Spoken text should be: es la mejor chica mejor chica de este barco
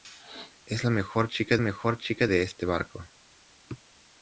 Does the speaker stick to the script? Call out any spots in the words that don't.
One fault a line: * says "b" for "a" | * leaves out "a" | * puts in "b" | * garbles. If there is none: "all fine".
all fine